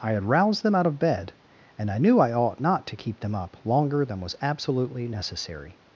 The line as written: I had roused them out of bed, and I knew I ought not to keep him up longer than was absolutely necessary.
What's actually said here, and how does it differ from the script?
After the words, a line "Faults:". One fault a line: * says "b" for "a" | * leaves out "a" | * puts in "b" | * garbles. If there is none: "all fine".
I had roused them out of bed, and I knew I ought not to keep them up longer than was absolutely necessary.
Faults:
* says "them" for "him"